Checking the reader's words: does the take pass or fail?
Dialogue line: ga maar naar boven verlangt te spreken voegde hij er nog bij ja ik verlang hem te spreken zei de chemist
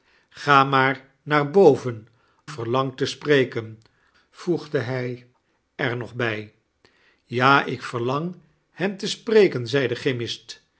pass